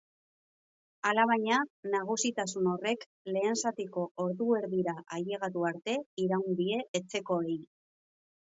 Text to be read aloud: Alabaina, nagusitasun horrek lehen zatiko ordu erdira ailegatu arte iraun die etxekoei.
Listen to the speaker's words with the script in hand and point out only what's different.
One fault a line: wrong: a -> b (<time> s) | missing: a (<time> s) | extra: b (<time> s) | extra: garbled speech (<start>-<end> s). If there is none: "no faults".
no faults